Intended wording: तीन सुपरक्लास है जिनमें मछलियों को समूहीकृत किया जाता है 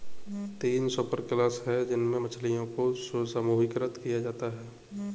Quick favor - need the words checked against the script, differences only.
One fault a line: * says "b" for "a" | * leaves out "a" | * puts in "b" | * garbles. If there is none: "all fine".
all fine